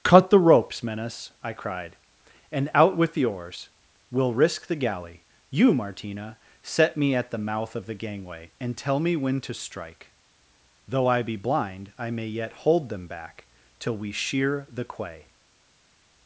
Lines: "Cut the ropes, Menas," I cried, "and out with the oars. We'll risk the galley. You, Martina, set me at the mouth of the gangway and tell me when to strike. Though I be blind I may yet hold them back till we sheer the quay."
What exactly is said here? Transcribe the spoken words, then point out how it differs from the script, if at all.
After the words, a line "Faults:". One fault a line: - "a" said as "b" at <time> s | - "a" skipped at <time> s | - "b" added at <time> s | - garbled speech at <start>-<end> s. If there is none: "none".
"Cut the ropes, Menas," I cried, "and out with the oars. We'll risk the galley. You, Martina, set me at the mouth of the gangway and tell me when to strike. Though I be blind I may yet hold them back till we sheer the quay."
Faults:
none